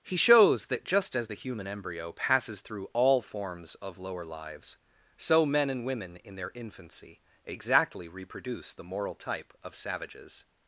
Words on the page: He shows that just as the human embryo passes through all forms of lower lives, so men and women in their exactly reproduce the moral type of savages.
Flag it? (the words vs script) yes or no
yes